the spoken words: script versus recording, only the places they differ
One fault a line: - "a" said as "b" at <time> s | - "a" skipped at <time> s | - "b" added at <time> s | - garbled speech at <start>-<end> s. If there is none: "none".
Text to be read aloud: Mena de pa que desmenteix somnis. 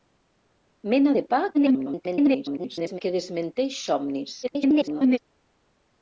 - garbled speech at 1.5-3.0 s
- garbled speech at 4.4-5.2 s